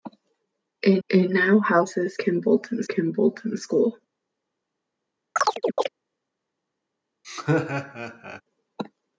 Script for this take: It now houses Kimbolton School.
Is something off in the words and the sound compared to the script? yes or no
yes